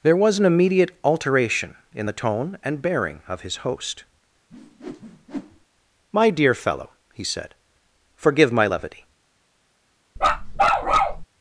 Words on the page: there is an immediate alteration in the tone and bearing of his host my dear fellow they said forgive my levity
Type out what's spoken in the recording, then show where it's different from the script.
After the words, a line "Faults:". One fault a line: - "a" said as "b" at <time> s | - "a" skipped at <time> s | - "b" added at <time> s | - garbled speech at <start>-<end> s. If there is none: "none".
there was an immediate alteration in the tone and bearing of his host my dear fellow he said forgive my levity
Faults:
- "is" said as "was" at 0.1 s
- "they" said as "he" at 7.1 s